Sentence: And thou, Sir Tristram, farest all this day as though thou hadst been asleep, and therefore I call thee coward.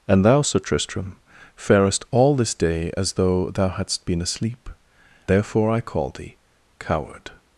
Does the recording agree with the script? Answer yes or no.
no